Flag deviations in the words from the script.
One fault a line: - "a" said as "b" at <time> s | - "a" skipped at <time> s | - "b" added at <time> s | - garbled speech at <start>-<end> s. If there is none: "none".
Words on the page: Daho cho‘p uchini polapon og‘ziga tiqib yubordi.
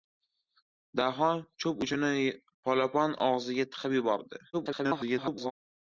- garbled speech at 4.5-5.5 s